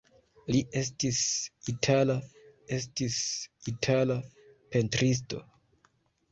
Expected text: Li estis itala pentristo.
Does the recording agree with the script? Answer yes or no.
no